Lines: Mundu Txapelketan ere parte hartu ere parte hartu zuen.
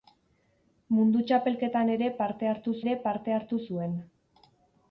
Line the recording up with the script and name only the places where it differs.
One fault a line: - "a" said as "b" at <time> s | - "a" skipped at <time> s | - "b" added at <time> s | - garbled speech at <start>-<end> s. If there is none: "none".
none